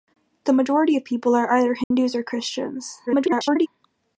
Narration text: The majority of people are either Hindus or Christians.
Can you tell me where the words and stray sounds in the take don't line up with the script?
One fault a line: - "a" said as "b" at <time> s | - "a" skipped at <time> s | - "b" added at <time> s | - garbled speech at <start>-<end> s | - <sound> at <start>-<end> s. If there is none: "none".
- dropout at 1.8-1.9 s
- garbled speech at 3.1-3.7 s